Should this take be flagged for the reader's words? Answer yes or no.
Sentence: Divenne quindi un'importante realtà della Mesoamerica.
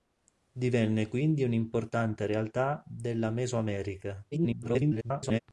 yes